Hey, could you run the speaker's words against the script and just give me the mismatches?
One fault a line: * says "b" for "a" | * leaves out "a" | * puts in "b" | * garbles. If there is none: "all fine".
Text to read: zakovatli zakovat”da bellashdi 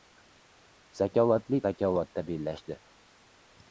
all fine